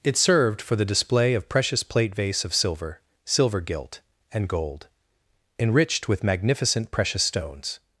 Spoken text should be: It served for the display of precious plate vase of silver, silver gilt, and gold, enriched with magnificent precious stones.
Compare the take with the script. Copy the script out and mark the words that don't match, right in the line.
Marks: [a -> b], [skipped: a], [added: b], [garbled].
It served for the display of precious plate vase of silver, silver gilt, and gold, enriched with magnificent precious stones.